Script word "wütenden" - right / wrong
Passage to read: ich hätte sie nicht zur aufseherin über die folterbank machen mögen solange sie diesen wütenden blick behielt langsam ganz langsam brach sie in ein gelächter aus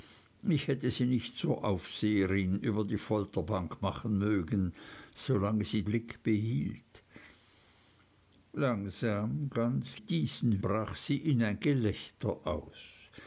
wrong